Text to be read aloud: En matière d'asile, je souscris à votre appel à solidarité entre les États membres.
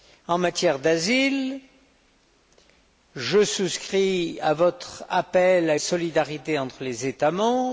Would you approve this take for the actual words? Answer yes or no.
yes